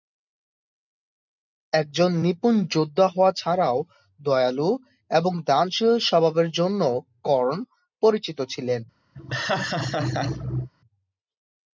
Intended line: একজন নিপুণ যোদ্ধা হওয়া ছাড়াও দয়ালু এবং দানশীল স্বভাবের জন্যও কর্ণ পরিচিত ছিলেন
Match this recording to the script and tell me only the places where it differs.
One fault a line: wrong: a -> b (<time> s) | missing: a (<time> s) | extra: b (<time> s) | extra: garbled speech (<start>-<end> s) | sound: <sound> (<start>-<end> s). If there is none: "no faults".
sound: laugh (9.1-10.7 s)